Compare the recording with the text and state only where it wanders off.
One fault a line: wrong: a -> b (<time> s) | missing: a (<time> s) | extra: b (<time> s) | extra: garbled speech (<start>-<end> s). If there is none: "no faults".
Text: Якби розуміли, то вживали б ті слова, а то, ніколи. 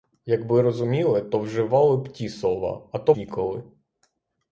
no faults